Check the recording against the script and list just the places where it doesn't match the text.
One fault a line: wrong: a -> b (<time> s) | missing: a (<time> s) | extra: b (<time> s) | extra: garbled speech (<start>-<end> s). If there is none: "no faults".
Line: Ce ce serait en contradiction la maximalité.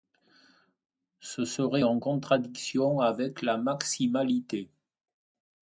missing: ce (1.4 s)
extra: avec (3.0 s)